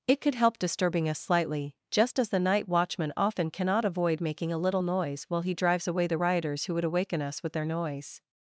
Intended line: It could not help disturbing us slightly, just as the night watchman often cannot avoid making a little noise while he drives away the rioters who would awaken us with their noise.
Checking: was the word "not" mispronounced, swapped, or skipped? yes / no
yes